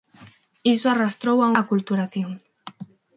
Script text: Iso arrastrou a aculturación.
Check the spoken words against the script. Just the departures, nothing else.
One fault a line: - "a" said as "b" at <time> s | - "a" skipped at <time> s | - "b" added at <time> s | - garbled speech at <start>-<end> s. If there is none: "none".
none